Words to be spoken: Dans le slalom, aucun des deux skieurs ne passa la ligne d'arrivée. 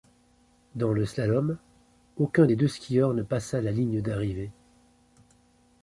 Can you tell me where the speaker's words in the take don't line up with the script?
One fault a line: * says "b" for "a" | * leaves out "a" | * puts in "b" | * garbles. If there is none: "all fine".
all fine